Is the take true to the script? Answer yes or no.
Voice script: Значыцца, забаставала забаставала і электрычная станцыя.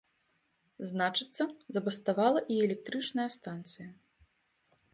no